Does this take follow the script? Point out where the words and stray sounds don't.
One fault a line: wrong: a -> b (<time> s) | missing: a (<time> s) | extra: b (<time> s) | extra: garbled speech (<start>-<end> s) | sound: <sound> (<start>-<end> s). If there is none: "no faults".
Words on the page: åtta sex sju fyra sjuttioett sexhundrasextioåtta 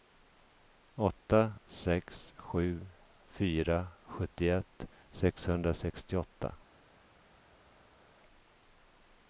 no faults